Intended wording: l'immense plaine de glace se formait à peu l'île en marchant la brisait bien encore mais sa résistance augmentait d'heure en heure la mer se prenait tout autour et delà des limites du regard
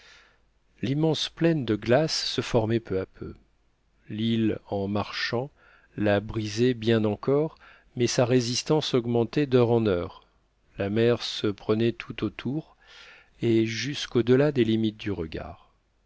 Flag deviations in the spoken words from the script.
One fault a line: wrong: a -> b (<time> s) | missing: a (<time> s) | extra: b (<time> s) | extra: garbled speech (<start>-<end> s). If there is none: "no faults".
extra: peu (2.8 s)
extra: jusqu'au (13.6 s)